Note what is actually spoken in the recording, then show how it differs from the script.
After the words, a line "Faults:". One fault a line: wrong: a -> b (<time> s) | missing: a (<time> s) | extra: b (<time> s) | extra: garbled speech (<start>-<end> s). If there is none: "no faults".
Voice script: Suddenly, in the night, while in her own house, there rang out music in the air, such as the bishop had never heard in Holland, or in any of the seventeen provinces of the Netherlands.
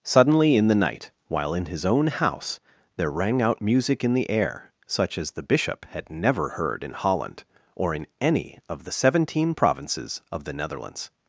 Suddenly, in the night, while in his own house, there rang out music in the air, such as the bishop had never heard in Holland, or in any of the seventeen provinces of the Netherlands.
Faults:
wrong: her -> his (1.6 s)